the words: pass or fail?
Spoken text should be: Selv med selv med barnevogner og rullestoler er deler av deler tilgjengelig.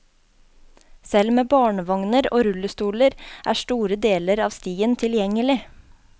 fail